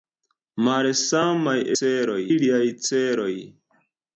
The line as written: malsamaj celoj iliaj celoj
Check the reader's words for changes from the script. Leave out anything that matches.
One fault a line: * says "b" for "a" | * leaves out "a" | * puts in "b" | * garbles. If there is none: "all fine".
all fine